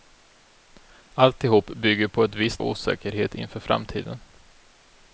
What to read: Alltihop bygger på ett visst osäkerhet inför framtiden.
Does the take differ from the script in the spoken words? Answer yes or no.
no